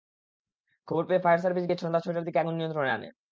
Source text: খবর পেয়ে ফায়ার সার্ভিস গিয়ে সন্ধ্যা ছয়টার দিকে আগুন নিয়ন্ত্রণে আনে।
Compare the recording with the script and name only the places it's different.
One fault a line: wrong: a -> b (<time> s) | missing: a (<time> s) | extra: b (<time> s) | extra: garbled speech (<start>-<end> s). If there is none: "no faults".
no faults